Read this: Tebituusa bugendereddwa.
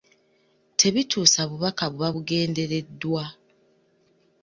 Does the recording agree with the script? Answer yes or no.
no